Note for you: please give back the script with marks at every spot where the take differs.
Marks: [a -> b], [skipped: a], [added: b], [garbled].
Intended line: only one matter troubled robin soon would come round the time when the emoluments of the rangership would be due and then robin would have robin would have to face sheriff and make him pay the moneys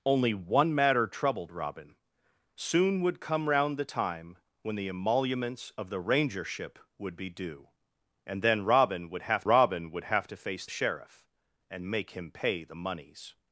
only one matter troubled robin soon would come round the time when the emoluments of the rangership would be due and then robin would have robin would have to face sheriff and make him pay the moneys